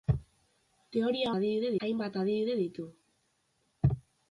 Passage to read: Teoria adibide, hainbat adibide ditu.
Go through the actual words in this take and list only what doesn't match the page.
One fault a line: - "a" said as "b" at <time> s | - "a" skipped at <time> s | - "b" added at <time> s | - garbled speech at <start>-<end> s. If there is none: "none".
none